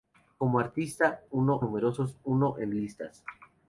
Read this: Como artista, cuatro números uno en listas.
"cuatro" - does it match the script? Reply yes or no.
no